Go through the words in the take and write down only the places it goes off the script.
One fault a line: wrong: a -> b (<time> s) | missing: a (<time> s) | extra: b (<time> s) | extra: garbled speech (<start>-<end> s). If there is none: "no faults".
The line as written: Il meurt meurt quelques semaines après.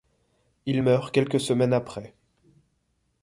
missing: meurt (1.1 s)